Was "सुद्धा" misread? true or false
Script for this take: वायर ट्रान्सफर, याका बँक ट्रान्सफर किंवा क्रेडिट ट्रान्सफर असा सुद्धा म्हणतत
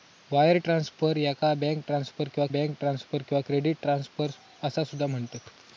false